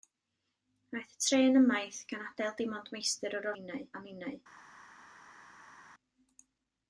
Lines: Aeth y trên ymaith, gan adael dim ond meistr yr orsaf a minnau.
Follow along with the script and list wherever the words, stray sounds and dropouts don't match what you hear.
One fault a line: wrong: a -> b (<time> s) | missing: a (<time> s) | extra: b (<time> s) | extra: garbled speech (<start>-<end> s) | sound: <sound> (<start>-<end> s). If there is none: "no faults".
wrong: orsaf -> minnau (3.6 s)